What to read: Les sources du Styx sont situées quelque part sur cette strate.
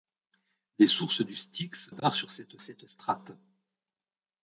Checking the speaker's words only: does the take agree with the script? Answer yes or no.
no